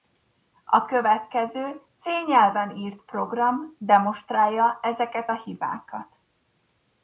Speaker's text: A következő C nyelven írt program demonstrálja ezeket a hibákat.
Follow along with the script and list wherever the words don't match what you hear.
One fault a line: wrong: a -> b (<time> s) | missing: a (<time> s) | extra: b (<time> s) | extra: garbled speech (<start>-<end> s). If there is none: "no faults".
no faults